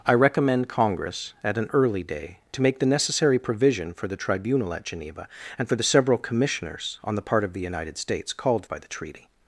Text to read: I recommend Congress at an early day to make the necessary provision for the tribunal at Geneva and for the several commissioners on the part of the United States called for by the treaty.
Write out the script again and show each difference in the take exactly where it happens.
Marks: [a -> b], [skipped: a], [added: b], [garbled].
I recommend Congress at an early day to make the necessary provision for the tribunal at Geneva and for the several commissioners on the part of the United States called [skipped: for] by the treaty.